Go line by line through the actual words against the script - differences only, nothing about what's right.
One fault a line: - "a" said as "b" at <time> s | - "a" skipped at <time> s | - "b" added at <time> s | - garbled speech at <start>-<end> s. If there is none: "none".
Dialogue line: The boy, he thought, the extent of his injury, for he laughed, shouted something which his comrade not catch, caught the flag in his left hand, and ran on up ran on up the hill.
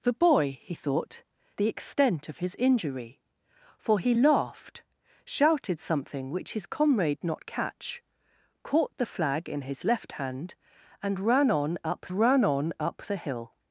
none